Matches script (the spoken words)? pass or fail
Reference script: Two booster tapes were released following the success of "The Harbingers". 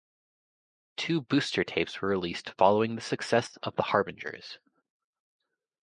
pass